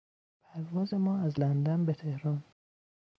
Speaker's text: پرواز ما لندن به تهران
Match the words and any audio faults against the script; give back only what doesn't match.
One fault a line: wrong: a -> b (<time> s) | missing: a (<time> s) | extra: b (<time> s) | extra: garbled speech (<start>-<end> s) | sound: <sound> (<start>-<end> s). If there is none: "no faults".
extra: از (1.2 s)